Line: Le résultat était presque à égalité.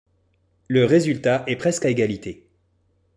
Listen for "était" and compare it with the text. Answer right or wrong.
wrong